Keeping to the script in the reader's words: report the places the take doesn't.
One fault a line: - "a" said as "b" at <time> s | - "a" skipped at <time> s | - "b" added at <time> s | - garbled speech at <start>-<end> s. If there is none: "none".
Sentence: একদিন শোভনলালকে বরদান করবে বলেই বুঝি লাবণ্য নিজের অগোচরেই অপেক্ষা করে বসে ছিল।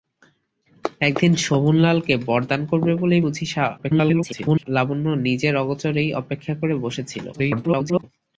- garbled speech at 3.8-4.7 s
- garbled speech at 7.3-8.0 s